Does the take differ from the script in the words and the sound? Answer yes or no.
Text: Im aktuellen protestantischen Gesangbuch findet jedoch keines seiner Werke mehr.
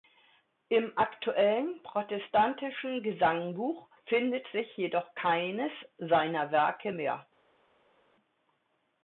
yes